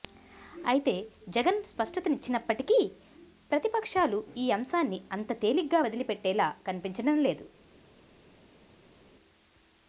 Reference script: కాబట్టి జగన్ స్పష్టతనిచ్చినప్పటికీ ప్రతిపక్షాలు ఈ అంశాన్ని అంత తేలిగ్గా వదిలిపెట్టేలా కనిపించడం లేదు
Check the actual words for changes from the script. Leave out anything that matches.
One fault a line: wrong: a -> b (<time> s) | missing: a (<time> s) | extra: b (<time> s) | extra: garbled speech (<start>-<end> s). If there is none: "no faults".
wrong: కాబట్టి -> అయితే (0.7 s)